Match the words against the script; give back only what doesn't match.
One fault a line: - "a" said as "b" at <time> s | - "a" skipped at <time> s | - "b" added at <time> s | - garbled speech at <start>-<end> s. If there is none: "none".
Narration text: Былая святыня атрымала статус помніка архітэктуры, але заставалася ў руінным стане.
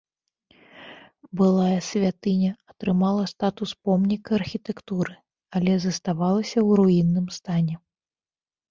none